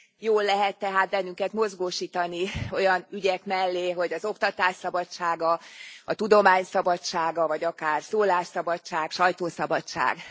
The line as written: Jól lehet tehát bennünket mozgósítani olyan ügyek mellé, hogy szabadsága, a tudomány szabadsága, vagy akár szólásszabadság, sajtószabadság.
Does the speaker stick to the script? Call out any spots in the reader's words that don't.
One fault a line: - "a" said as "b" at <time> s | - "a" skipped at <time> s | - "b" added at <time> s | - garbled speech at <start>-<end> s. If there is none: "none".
- "az oktatás" added at 4.1 s